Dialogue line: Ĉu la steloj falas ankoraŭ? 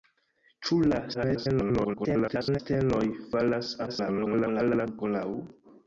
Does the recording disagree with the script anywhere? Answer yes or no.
yes